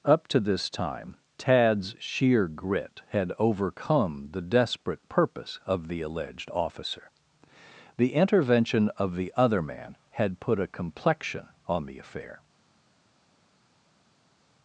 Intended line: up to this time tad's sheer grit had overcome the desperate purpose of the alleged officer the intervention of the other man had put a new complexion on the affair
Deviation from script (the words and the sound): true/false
true